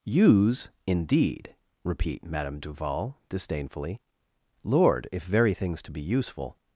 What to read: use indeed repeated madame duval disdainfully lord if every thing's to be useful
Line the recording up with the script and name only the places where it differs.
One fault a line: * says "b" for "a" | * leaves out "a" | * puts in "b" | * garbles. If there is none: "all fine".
* says "repeat" for "repeated"
* says "very" for "every"